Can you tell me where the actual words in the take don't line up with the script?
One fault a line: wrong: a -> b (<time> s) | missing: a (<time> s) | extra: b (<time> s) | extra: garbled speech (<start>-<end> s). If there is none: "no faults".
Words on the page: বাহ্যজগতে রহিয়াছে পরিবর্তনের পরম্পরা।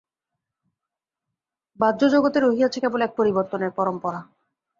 extra: কেবল এক (2.8 s)